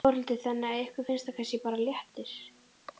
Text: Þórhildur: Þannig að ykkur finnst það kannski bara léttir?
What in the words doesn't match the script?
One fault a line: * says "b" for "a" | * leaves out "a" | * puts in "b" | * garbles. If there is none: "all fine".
all fine